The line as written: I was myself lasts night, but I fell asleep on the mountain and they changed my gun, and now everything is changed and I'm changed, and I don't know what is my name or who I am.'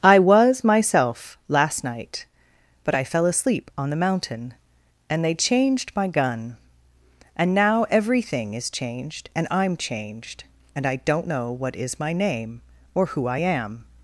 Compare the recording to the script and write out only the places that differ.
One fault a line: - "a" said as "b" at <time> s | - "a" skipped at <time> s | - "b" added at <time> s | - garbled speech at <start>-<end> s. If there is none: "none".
- "lasts" said as "last" at 1.5 s